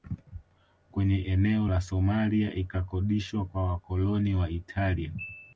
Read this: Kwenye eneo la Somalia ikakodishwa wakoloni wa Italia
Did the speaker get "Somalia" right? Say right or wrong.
right